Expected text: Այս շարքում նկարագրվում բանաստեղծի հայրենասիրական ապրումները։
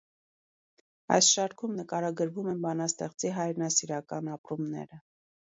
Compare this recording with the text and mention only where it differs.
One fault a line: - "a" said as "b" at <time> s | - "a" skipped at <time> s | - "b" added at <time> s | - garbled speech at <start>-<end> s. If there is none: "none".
- "են" added at 2.5 s